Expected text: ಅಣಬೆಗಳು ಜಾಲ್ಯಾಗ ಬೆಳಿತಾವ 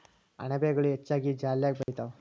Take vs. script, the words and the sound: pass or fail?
fail